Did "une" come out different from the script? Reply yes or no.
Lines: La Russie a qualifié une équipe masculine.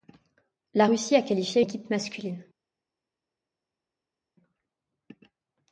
yes